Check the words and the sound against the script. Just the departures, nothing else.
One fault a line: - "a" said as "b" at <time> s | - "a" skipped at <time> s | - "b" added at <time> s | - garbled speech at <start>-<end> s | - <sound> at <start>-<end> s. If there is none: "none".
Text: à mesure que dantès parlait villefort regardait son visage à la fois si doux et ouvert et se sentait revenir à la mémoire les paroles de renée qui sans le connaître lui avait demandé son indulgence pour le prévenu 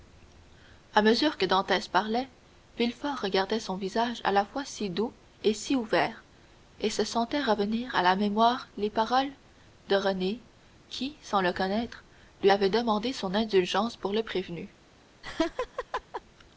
- "si" added at 5.5 s
- laugh at 15.2-16.2 s